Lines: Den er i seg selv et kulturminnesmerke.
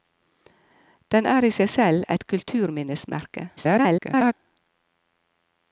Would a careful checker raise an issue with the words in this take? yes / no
yes